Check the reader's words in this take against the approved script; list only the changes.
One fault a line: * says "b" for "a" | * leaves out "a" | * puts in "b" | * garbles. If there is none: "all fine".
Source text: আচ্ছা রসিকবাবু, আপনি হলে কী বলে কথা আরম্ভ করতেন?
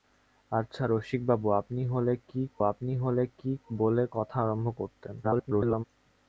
* puts in "আপনি হলে কী"
* garbles